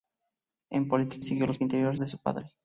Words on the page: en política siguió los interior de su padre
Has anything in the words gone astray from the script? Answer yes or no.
no